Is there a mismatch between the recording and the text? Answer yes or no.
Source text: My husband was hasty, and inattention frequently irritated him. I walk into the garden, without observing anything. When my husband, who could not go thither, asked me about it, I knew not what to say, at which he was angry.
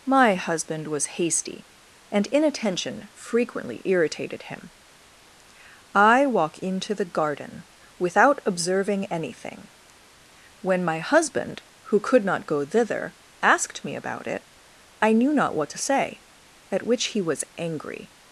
no